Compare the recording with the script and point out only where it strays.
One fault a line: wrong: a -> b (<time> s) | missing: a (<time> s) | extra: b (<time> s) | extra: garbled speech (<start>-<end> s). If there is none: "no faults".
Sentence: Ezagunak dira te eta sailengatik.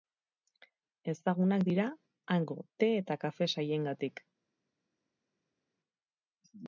extra: hango (2.4 s)
extra: kafe (3.3 s)